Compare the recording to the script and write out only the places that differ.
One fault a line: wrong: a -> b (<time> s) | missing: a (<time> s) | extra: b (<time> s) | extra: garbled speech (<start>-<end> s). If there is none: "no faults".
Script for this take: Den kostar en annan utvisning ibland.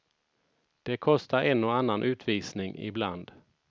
wrong: Den -> Det (0.8 s)
extra: och (1.6 s)